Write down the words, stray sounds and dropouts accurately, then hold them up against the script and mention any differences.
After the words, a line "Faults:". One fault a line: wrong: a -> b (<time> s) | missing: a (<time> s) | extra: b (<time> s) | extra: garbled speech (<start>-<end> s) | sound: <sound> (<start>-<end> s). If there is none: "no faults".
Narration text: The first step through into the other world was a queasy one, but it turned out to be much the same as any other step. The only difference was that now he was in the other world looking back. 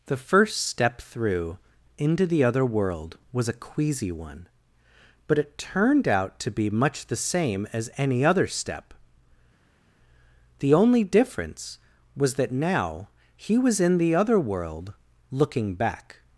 The first step through into the other world was a queasy one, but it turned out to be much the same as any other step. The only difference was that now he was in the other world looking back.
Faults:
no faults